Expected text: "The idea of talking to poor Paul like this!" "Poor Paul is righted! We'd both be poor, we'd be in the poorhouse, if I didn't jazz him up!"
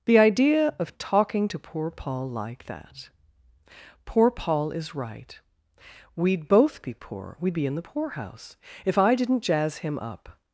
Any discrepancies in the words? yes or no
yes